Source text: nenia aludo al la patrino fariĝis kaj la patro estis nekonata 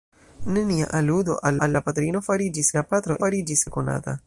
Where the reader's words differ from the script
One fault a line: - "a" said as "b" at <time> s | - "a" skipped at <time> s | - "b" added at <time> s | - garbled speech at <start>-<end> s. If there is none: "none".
- "al" added at 1.7 s
- "kaj" skipped at 2.7 s
- "estis" said as "fariĝis" at 3.2 s